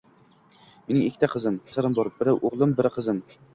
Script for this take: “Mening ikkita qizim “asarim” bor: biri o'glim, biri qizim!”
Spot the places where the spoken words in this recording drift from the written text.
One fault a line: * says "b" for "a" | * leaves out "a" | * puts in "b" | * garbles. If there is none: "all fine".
all fine